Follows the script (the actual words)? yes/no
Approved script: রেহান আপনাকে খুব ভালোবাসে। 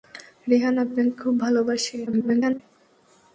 no